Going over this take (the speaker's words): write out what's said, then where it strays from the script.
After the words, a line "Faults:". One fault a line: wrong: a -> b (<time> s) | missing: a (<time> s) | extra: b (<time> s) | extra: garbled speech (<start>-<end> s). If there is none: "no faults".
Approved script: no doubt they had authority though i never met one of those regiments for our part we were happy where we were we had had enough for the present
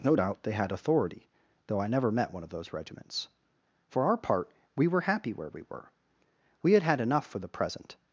no doubt they had authority though i never met one of those regiments for our part we were happy where we were we had had enough for the present
Faults:
no faults